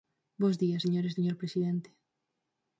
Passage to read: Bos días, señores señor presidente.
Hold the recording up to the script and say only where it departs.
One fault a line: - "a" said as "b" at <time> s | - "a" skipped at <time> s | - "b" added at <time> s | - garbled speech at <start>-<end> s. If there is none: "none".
none